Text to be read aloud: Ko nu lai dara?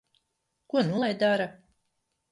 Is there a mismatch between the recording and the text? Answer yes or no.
no